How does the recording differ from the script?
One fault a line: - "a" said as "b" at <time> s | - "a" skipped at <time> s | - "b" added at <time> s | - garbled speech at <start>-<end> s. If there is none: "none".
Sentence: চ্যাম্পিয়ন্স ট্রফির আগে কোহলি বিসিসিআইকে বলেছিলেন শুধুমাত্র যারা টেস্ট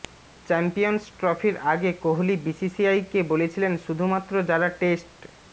none